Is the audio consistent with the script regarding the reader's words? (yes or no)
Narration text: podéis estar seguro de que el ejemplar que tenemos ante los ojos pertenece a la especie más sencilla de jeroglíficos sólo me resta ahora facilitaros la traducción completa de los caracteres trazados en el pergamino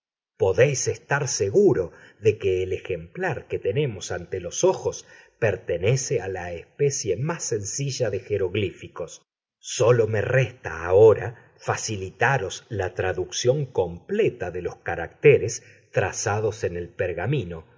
yes